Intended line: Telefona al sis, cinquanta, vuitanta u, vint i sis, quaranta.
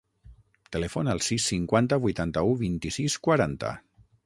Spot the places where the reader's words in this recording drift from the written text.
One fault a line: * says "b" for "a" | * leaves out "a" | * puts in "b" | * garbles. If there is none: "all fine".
all fine